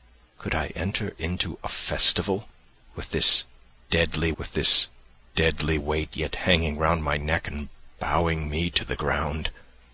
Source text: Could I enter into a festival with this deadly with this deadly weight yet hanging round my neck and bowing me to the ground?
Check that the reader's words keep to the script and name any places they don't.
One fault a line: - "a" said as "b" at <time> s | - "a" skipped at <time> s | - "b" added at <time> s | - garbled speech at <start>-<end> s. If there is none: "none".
none